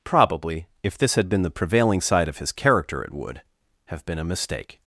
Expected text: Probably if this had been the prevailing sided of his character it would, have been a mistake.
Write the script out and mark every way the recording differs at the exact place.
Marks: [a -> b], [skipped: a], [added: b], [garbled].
Probably if this had been the prevailing [sided -> side] of his character it would, have been a mistake.